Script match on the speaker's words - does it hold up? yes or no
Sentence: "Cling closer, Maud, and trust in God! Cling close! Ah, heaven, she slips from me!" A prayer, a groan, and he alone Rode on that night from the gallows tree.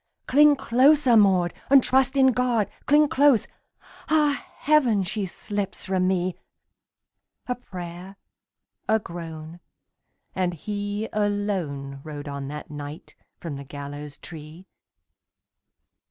yes